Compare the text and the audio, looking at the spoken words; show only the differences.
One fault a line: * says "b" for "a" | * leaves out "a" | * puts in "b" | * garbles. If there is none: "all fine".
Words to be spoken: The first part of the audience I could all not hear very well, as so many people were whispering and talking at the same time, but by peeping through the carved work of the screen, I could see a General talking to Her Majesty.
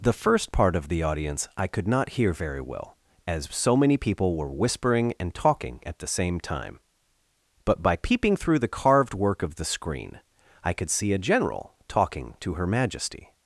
* leaves out "all"